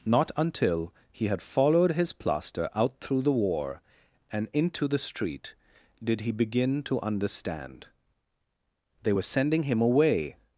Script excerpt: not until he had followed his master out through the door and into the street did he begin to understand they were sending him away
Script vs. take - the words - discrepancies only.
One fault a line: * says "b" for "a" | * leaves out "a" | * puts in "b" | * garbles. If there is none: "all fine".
* says "plaster" for "master"
* says "war" for "door"